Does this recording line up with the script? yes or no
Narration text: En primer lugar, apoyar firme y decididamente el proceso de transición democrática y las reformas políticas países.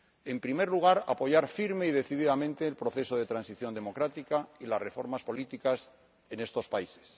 no